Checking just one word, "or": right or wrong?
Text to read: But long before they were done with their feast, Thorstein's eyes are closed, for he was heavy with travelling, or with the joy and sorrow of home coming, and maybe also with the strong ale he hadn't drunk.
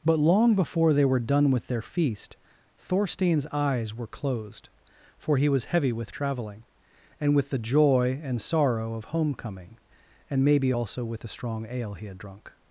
wrong